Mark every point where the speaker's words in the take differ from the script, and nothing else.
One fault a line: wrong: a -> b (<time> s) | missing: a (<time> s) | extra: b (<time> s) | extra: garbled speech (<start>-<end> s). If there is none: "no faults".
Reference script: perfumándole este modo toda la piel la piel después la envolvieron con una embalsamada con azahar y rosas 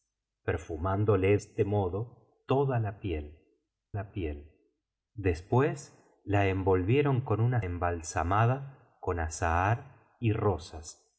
no faults